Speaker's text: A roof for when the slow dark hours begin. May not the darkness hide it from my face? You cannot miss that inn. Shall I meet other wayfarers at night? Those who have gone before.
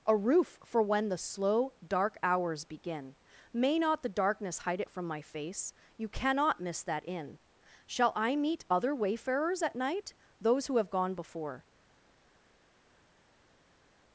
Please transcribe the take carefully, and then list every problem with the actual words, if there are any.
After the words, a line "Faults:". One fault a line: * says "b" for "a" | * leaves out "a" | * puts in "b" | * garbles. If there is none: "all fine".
A roof for when the slow dark hours begin. May not the darkness hide it from my face? You cannot miss that inn. Shall I meet other wayfarers at night? Those who have gone before.
Faults:
all fine